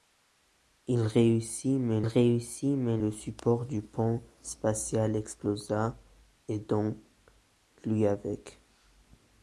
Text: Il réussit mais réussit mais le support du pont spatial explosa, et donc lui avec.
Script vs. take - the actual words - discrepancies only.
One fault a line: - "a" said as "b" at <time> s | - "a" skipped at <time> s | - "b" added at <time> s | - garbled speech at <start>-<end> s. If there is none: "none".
none